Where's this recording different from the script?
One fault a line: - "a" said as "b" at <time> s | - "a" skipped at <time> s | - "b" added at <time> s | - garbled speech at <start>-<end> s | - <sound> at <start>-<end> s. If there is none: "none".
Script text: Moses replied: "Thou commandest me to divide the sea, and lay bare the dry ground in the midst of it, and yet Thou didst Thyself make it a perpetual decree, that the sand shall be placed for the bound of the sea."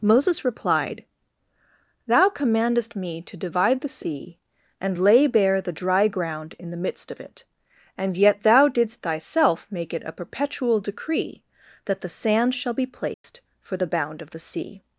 - dropout at 13.1-13.2 s